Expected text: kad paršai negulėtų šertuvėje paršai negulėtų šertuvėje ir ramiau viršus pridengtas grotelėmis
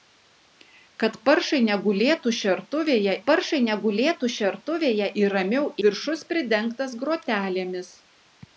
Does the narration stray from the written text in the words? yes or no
no